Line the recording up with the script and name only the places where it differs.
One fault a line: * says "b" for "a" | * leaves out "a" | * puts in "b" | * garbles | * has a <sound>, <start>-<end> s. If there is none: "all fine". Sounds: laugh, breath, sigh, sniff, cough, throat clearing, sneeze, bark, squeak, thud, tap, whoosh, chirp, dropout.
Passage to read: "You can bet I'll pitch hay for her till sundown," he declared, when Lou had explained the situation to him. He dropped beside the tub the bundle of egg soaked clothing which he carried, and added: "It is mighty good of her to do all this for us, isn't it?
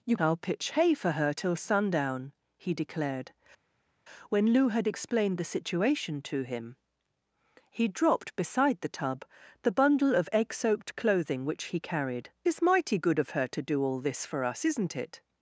* leaves out "can bet"
* leaves out "and added It"